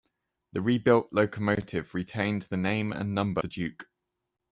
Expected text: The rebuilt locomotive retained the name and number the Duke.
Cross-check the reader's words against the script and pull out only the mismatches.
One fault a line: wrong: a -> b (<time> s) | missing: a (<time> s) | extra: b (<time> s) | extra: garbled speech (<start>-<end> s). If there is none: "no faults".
no faults